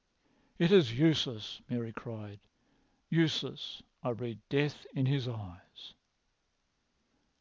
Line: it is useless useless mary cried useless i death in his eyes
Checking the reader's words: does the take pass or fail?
fail